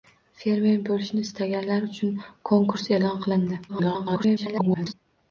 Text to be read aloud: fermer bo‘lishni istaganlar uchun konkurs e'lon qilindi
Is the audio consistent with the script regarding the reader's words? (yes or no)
no